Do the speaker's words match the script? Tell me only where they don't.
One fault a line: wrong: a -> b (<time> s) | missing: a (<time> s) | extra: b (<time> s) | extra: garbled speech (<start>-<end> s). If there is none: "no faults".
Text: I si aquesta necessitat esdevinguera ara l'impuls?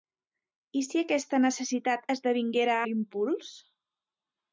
missing: ara (2.8 s)